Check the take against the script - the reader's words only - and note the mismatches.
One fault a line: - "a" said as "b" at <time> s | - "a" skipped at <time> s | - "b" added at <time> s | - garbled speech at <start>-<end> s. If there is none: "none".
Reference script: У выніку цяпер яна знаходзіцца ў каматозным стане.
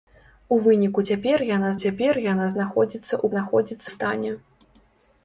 - "цяпер яна" added at 1.8 s
- "каматозным" said as "знаходзіцца" at 3.3 s